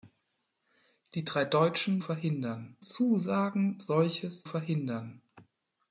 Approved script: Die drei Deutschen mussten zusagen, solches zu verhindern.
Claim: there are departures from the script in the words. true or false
true